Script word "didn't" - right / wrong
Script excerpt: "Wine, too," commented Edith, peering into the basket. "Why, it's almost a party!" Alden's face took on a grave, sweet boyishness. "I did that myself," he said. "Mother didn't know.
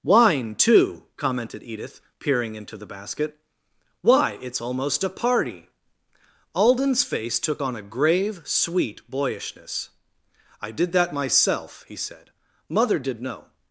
wrong